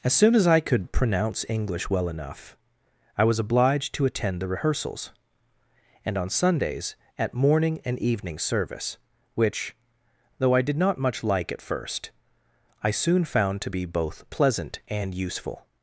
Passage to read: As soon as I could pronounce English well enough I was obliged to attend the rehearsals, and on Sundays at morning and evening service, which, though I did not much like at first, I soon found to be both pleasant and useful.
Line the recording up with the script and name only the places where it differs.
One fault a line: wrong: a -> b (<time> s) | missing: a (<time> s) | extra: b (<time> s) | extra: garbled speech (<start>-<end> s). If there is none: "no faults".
no faults